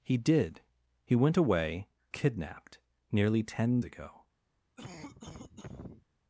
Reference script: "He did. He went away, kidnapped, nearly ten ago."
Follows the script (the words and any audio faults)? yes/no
no